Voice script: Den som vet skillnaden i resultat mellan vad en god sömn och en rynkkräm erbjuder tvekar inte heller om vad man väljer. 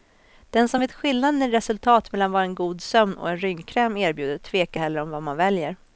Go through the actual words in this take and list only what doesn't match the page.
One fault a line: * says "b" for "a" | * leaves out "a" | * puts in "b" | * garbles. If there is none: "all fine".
* leaves out "inte"